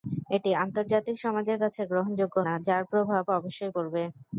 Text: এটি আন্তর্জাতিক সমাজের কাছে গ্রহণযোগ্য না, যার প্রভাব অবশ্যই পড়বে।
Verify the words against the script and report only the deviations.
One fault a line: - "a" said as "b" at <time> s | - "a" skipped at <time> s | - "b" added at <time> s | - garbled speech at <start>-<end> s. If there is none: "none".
none